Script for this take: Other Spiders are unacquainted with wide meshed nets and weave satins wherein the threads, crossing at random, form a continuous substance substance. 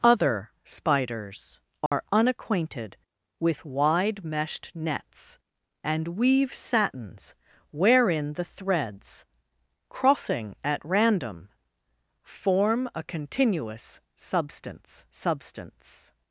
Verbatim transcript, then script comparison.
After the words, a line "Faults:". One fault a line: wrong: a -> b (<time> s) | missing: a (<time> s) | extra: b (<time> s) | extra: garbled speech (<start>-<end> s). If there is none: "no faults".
Other Spiders are unacquainted with wide meshed nets and weave satins wherein the threads, crossing at random, form a continuous substance substance.
Faults:
no faults